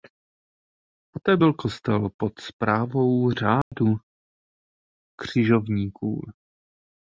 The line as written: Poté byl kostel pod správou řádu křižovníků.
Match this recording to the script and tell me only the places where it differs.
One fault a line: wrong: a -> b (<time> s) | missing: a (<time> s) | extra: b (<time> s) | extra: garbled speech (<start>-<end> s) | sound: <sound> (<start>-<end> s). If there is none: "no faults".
sound: dropout (3.6-3.7 s)